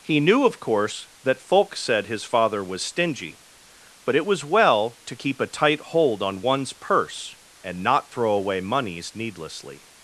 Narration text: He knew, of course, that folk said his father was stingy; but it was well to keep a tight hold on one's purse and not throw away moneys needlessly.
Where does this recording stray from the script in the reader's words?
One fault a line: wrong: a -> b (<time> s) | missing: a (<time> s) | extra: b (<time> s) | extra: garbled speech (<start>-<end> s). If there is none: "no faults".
no faults